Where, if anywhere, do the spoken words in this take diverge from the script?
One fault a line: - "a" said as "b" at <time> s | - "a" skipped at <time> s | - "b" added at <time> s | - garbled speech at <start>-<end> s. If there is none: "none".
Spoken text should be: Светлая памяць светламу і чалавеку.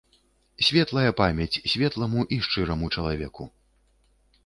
- "шчыраму" added at 2.5 s